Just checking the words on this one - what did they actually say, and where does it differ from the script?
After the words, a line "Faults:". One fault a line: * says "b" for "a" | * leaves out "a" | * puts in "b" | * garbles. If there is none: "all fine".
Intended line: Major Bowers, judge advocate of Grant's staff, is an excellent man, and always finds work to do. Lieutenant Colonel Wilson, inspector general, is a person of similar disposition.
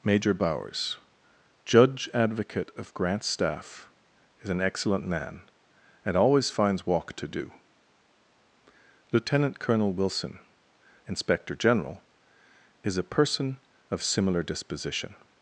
Major Bowers, judge advocate of Grant's staff, is an excellent man, and always finds walk to do. Lieutenant Colonel Wilson, inspector general, is a person of similar disposition.
Faults:
* says "walk" for "work"